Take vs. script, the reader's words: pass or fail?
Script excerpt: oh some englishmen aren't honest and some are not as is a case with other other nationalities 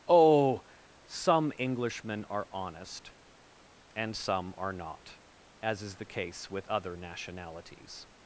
fail